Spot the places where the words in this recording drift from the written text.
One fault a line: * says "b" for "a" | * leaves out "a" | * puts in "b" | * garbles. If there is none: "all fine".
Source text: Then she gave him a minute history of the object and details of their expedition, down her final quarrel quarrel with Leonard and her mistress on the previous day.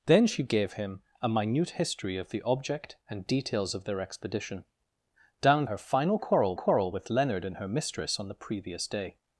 all fine